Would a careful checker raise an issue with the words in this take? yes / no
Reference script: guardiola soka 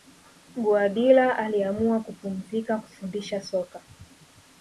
yes